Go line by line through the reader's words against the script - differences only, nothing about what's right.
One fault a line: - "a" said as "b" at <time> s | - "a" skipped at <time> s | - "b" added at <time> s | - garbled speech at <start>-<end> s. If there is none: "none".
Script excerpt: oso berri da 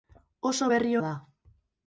none